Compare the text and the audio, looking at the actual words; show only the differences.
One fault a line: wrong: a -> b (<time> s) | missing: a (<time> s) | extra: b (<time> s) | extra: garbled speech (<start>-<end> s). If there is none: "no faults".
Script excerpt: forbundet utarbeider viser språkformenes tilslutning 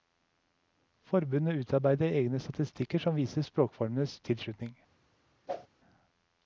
extra: egne statistikker som (2.1 s)